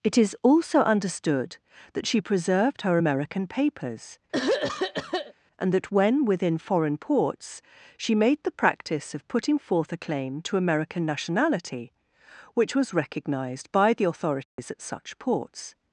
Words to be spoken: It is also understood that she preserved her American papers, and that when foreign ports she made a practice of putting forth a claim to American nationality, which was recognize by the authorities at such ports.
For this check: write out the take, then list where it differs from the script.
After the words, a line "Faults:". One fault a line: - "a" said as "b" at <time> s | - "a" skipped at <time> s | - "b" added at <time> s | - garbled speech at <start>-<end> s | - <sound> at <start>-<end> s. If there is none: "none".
It is also understood that she preserved her American papers, and that when within foreign ports she made the practice of putting forth a claim to American nationality, which was recognized by the authorities at such ports.
Faults:
- throat clearing at 4.3-5.3 s
- "within" added at 6.2 s
- "a" said as "the" at 8.4 s
- "recognize" said as "recognized" at 12.9 s
- dropout at 14.4-14.6 s